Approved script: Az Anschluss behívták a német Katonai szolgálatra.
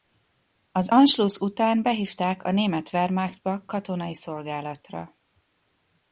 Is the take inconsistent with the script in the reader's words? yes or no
yes